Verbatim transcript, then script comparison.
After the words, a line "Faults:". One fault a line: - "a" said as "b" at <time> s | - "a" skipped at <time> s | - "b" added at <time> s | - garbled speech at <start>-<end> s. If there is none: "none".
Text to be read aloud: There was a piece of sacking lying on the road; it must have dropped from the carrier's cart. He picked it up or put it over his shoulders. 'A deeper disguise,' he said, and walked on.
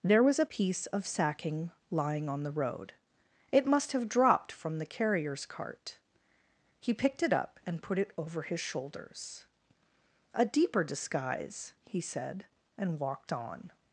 There was a piece of sacking lying on the road; it must have dropped from the carrier's cart. He picked it up and put it over his shoulders. 'A deeper disguise,' he said, and walked on.
Faults:
- "or" said as "and" at 7.7 s